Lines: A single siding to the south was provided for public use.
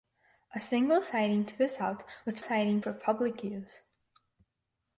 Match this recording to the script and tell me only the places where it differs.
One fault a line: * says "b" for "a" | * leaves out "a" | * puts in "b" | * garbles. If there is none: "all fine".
* says "siding" for "provided"